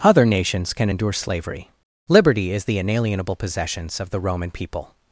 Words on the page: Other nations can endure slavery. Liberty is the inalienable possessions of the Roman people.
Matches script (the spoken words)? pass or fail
pass